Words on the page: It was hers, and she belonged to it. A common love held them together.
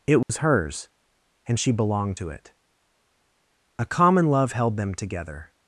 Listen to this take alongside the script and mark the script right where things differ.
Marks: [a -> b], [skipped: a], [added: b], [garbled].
It was hers, and she belonged to it. A common love held them together.